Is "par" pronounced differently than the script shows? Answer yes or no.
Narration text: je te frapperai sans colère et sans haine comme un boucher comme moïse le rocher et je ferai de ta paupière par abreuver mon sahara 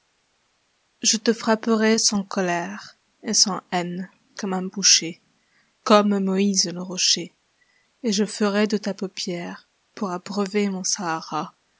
yes